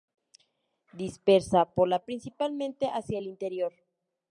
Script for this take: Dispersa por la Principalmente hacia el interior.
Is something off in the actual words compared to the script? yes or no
no